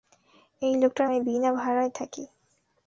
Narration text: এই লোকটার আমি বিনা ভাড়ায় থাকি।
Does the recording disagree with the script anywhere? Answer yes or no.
no